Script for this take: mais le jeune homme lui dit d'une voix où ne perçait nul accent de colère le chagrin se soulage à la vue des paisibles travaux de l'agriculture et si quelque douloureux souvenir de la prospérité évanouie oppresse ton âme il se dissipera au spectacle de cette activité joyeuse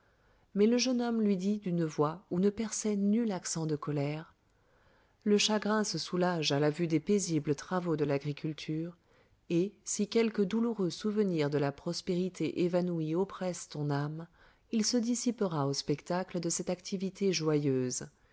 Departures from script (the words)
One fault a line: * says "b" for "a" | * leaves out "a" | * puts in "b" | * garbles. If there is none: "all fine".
all fine